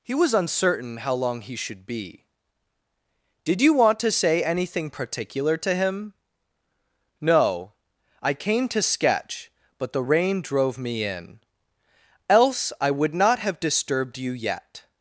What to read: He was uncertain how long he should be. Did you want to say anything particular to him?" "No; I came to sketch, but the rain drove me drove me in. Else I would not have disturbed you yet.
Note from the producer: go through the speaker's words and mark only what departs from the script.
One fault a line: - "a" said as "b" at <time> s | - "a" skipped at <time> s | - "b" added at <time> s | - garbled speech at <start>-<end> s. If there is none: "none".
- "drove me" skipped at 11.0 s